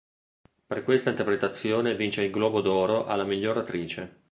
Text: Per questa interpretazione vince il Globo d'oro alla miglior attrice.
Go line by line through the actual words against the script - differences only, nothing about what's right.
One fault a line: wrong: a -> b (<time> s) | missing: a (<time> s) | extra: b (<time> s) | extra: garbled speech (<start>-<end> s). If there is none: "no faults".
no faults